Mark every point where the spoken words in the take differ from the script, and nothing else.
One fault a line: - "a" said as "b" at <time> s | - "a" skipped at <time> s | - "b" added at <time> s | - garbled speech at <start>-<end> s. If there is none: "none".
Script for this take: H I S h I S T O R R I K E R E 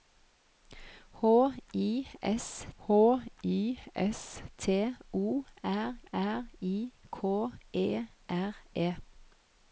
none